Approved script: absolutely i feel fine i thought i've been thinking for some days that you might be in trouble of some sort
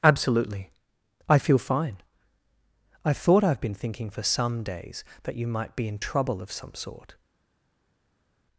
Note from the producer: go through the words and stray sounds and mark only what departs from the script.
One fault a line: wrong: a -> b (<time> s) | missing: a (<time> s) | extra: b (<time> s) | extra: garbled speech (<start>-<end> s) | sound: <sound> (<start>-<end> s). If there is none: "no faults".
no faults